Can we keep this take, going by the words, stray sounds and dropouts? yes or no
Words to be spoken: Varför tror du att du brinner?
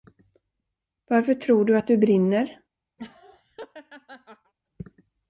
no